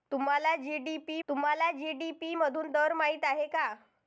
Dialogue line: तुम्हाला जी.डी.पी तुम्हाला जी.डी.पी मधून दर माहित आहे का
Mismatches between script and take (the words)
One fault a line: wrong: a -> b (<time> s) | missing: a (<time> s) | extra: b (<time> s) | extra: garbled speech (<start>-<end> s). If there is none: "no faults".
no faults